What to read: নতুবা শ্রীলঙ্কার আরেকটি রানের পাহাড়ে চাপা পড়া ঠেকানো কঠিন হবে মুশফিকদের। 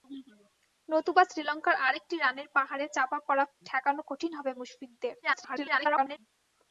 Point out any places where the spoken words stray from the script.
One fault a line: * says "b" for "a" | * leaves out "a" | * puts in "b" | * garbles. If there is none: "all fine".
* garbles